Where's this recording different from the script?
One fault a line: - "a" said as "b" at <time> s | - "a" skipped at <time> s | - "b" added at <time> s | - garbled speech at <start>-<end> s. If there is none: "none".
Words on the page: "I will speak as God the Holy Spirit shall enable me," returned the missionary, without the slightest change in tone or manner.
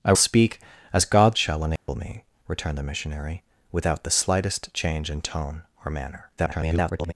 - "will" skipped at 0.1 s
- "the Holy Spirit" skipped at 1.3 s
- garbled speech at 6.4-7.1 s